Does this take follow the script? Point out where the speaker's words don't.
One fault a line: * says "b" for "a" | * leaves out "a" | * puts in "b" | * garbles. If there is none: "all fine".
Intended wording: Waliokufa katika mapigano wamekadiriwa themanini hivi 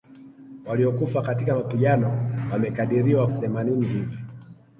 all fine